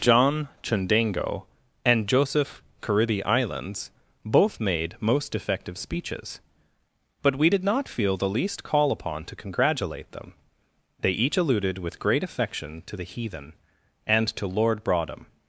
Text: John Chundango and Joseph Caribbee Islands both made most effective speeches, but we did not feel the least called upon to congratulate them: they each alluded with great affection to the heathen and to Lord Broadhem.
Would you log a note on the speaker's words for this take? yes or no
yes